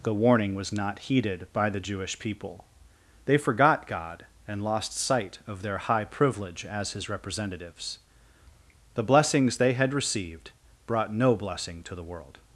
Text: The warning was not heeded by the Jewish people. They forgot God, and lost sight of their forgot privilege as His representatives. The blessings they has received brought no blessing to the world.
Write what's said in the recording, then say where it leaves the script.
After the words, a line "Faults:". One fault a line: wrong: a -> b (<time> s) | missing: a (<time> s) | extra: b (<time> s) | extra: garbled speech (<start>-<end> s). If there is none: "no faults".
The warning was not heeded by the Jewish people. They forgot God, and lost sight of their high privilege as His representatives. The blessings they had received brought no blessing to the world.
Faults:
wrong: forgot -> high (5.8 s)
wrong: has -> had (9.7 s)